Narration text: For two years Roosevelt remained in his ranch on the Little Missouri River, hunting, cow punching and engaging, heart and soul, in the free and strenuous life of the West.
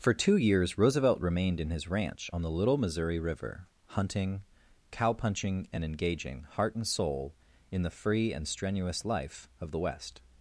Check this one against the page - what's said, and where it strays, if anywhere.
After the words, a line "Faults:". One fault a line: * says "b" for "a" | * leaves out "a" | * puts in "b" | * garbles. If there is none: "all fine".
For two years Roosevelt remained in his ranch on the Little Missouri River, hunting, cow punching and engaging, heart and soul, in the free and strenuous life of the West.
Faults:
all fine